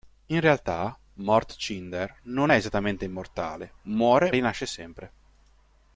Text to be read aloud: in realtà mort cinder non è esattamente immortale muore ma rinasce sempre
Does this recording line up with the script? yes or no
no